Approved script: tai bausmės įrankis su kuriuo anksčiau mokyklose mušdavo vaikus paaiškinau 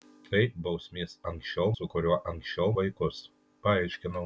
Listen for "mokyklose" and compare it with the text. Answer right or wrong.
wrong